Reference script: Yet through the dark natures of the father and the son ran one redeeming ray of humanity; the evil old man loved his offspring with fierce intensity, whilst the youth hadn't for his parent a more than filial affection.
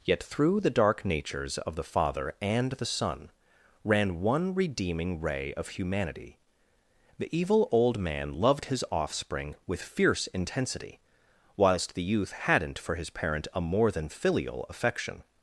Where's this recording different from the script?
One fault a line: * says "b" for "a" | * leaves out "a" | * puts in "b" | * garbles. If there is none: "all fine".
all fine